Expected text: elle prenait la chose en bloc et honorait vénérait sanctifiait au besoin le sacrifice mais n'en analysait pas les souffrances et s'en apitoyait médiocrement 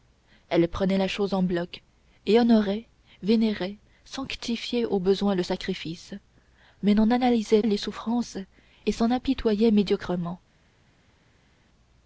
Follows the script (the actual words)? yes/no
no